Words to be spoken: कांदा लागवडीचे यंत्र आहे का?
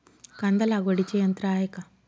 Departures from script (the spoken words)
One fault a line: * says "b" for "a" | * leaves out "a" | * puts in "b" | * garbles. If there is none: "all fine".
all fine